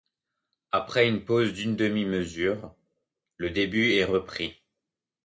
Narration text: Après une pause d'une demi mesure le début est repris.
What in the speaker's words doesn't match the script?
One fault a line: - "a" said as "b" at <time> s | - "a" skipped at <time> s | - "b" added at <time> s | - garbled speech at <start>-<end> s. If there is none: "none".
none